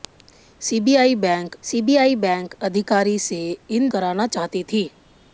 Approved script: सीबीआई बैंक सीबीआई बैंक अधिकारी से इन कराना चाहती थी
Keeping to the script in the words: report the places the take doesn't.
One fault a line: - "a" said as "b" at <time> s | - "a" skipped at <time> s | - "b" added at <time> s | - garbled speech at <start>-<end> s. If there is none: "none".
none